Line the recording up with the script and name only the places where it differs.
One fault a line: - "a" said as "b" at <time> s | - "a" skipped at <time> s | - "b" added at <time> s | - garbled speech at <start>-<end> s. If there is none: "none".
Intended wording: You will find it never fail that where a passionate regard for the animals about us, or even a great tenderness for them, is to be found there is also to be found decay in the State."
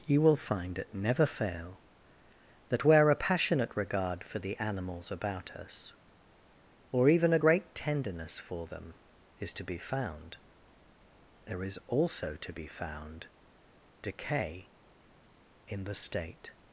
none